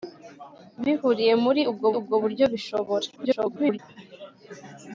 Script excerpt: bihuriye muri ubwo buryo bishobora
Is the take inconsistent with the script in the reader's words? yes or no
yes